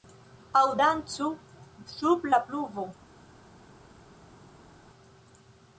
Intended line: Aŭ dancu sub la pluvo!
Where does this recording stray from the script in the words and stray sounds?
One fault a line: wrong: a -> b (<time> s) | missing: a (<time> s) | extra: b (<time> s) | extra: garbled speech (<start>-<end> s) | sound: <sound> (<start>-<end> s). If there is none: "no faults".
no faults